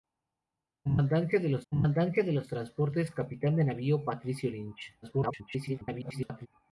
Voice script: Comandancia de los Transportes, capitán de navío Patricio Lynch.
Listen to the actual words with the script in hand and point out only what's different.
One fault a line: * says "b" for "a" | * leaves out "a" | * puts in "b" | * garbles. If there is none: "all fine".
* puts in "comandancia de los"
* garbles